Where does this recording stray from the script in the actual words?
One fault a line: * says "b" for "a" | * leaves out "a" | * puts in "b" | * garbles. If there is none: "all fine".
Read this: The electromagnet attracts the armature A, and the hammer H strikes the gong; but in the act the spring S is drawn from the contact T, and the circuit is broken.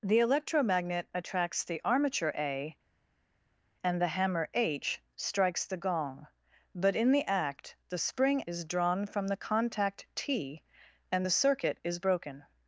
* leaves out "S"